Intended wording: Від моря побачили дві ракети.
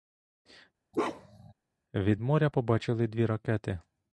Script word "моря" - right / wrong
right